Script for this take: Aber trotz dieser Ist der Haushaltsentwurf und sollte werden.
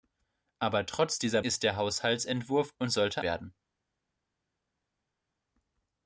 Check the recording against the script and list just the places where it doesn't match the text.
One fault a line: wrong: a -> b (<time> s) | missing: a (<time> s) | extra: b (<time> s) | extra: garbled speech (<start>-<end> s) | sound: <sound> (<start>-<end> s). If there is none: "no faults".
no faults